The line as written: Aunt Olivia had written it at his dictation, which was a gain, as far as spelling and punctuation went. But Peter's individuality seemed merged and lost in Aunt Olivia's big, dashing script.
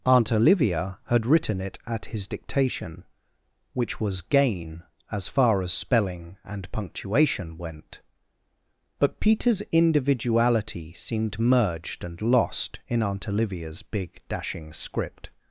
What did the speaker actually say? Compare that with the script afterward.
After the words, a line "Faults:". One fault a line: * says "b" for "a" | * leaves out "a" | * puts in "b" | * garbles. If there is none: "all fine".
Aunt Olivia had written it at his dictation, which was gain, as far as spelling and punctuation went. But Peter's individuality seemed merged and lost in Aunt Olivia's big, dashing script.
Faults:
* leaves out "a"